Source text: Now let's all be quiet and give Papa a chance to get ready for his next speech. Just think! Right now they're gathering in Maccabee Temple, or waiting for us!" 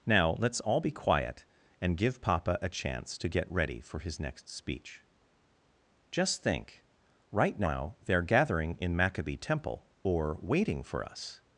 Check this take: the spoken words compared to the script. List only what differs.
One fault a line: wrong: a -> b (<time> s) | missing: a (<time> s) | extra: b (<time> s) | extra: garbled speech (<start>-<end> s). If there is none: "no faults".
no faults